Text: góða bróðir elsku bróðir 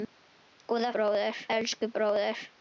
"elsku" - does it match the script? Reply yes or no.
yes